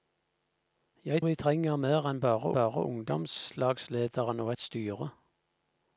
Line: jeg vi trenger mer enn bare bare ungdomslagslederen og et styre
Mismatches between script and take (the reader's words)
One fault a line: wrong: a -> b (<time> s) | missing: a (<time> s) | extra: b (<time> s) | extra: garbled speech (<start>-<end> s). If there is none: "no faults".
no faults